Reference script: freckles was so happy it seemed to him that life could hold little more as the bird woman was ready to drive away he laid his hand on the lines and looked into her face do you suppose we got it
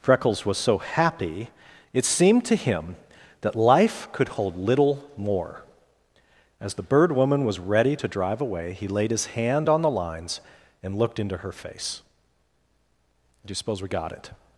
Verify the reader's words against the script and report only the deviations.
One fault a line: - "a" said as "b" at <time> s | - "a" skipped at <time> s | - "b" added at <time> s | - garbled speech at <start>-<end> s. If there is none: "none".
none